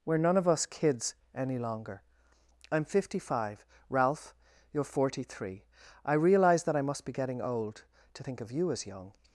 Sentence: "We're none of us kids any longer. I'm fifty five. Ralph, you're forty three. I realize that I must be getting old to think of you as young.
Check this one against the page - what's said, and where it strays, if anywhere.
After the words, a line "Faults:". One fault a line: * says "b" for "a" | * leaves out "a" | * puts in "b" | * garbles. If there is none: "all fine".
"We're none of us kids any longer. I'm fifty five. Ralph, you're forty three. I realize that I must be getting old to think of you as young.
Faults:
all fine